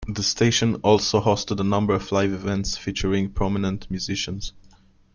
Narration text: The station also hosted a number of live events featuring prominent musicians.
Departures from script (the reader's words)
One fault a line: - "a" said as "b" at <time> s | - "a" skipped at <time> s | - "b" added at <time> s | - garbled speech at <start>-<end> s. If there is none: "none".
none